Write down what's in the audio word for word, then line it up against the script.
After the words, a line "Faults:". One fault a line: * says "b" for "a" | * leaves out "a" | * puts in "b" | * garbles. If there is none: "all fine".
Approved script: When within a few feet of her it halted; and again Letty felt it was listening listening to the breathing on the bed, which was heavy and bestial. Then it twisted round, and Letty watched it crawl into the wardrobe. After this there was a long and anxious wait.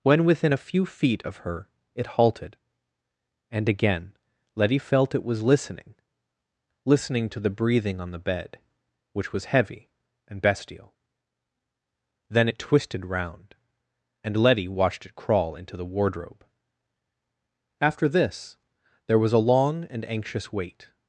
When within a few feet of her it halted; and again Letty felt it was listening listening to the breathing on the bed, which was heavy and bestial. Then it twisted round, and Letty watched it crawl into the wardrobe. After this there was a long and anxious wait.
Faults:
all fine